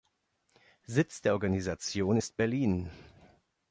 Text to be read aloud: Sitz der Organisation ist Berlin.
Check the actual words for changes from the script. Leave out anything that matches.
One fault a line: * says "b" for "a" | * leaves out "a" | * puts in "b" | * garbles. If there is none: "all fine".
all fine